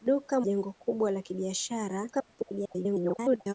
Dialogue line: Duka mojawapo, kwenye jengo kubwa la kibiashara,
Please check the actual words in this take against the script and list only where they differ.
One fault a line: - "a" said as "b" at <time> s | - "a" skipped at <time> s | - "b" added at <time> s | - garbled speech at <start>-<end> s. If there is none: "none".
- "mojawapo kwenye" skipped at 0.4 s
- garbled speech at 2.1-3.5 s